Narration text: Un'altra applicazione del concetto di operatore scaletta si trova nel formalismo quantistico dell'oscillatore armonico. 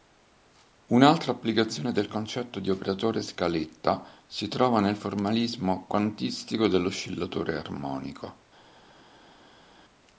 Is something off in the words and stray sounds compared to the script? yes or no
no